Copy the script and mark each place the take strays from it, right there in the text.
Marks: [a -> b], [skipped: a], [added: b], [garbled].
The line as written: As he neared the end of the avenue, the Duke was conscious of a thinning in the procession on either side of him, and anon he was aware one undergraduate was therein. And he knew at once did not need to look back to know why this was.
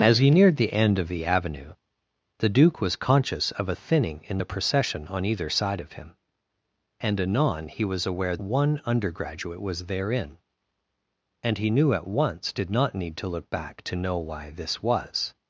As he neared the end of the avenue, the Duke was conscious of a thinning in the procession on either side of him, and anon he was aware one undergraduate was therein. And he knew at once did not need to look back to know why this was.